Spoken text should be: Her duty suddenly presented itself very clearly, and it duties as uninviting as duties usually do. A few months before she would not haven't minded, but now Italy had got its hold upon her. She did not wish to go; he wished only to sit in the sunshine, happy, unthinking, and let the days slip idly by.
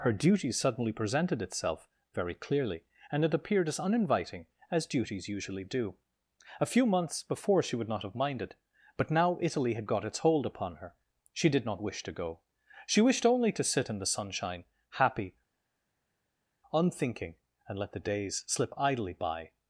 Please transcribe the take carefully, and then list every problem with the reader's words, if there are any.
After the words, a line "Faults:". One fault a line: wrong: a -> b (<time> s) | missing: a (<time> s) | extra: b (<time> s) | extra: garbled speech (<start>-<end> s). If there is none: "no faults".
Her duty suddenly presented itself very clearly, and it appeared as uninviting as duties usually do. A few months before she would not have minded, but now Italy had got its hold upon her. She did not wish to go; she wished only to sit in the sunshine, happy, unthinking, and let the days slip idly by.
Faults:
wrong: duties -> appeared (3.4 s)
wrong: haven't -> have (8.0 s)
wrong: he -> she (12.9 s)